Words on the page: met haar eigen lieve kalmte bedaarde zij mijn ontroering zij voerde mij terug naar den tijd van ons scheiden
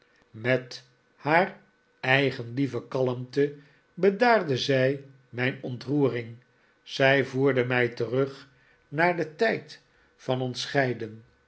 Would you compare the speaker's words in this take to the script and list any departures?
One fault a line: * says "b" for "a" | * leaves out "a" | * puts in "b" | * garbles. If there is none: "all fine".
all fine